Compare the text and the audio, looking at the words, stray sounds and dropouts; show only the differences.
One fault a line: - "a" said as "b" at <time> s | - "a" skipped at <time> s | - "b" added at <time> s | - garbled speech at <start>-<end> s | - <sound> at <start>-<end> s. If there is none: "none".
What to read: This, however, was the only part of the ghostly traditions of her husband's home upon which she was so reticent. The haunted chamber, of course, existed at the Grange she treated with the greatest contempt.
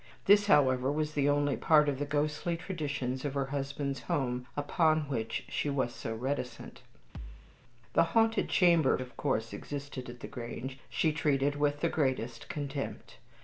- thud at 7.1-7.6 s